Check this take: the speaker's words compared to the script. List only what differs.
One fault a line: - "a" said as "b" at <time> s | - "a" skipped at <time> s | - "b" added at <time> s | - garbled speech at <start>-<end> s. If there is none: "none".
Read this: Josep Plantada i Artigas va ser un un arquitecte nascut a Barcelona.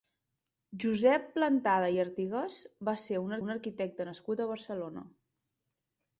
none